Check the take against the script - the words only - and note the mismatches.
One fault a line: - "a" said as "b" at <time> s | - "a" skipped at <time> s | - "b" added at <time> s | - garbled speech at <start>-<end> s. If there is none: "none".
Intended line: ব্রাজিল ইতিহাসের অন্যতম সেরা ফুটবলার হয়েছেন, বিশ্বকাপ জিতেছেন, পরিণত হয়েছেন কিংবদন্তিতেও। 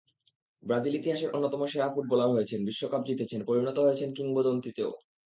none